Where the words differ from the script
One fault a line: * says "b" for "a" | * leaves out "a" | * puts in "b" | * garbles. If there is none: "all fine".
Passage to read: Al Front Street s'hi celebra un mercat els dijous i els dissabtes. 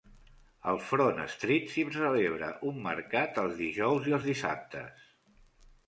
all fine